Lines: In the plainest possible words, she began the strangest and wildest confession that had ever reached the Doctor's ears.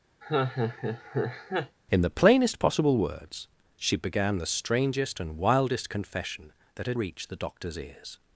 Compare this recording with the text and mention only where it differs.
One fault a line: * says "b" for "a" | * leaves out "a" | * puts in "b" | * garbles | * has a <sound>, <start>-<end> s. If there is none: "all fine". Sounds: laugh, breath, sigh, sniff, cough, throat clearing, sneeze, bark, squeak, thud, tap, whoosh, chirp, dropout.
* has a laugh, 0.2-1.8 s
* leaves out "ever"